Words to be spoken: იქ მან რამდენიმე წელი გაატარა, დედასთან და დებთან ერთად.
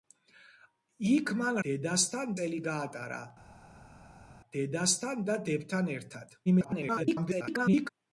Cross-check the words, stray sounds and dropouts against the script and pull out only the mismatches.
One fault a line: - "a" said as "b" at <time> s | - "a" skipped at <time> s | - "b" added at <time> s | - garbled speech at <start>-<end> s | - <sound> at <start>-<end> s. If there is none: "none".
- "რამდენიმე" said as "დედასთან" at 1.7 s
- garbled speech at 6.5-7.9 s